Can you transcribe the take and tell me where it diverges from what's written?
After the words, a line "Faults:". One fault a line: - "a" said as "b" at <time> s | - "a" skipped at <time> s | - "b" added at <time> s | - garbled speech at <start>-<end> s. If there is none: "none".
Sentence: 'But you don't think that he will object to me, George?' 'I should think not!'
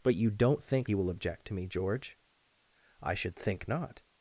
'But you don't think he will object to me, George?' 'I should think not!'
Faults:
- "that" skipped at 0.9 s